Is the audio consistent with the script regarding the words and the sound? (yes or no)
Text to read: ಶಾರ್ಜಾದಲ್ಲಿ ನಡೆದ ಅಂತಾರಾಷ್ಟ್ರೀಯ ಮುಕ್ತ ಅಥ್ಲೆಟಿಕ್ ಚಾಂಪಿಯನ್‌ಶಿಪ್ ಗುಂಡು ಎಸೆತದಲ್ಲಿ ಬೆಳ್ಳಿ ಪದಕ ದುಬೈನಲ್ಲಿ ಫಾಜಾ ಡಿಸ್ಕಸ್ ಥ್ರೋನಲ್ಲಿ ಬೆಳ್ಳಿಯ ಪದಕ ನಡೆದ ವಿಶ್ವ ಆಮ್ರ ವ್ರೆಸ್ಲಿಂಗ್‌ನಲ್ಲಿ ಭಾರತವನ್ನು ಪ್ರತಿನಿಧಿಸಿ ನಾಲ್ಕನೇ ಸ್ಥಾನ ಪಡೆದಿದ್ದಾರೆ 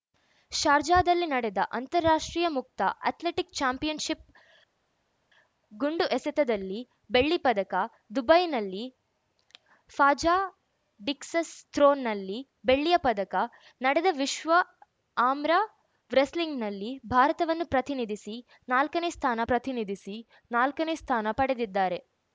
no